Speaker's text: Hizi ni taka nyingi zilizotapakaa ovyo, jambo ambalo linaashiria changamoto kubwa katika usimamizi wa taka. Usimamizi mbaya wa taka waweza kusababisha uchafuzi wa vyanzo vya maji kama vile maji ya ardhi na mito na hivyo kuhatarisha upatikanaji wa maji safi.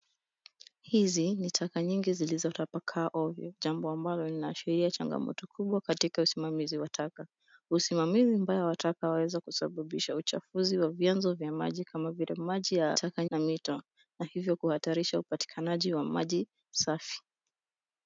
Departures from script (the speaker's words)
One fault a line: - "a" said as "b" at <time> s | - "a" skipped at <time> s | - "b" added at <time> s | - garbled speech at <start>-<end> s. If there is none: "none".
- "ardhi" said as "taka" at 12.9 s